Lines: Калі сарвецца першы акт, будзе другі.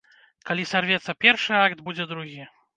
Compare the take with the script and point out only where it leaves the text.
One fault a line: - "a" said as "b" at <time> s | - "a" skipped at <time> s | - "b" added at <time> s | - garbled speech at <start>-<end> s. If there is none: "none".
none